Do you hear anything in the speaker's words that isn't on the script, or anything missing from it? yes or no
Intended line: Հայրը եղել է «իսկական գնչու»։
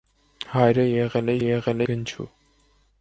yes